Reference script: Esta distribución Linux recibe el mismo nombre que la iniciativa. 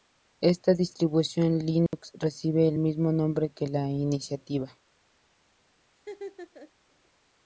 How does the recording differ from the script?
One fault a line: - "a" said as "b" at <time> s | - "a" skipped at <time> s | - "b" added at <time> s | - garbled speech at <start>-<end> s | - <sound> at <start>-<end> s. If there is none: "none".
- dropout at 1.9-1.9 s
- laugh at 6.0-6.7 s